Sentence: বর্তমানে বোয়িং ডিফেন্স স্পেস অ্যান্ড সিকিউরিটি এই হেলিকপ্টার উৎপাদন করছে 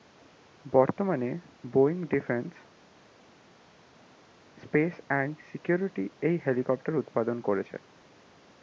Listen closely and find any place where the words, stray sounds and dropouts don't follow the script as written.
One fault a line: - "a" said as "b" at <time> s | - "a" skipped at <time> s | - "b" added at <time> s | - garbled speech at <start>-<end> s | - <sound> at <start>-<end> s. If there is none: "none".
none